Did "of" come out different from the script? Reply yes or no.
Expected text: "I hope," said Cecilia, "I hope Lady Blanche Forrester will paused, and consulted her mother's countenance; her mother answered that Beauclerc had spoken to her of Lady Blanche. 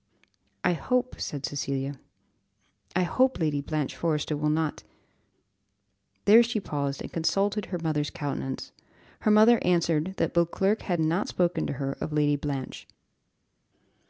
no